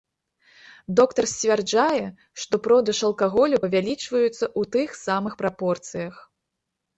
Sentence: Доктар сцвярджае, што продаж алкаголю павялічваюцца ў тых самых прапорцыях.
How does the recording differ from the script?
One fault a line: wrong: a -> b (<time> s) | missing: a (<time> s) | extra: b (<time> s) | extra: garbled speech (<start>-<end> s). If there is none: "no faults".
no faults